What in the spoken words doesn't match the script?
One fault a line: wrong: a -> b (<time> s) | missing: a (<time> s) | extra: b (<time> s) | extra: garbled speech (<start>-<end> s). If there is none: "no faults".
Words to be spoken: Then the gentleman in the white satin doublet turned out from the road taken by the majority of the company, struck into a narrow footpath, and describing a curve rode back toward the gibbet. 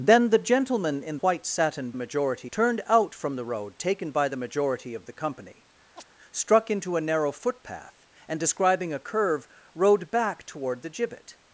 missing: the (1.2 s)
wrong: doublet -> majority (1.9 s)